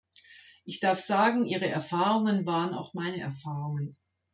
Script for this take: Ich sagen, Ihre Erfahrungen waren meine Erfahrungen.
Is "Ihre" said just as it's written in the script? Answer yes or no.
yes